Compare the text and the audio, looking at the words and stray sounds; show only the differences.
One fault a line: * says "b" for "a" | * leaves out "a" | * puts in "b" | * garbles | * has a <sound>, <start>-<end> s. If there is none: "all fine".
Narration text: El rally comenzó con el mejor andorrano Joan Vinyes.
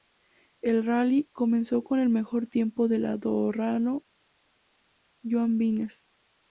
* puts in "tiempo del"